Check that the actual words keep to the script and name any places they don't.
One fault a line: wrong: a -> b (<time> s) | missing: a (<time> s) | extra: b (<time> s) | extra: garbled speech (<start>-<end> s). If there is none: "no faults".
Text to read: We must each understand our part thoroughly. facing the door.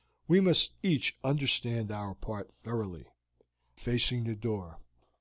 no faults